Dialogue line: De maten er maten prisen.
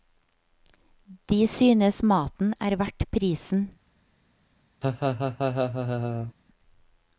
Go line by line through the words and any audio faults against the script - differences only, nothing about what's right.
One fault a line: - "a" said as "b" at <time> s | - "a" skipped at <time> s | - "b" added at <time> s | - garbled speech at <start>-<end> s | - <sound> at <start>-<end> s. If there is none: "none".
- "synes" added at 1.5 s
- "maten" said as "verdt" at 2.8 s
- laugh at 4.8-6.3 s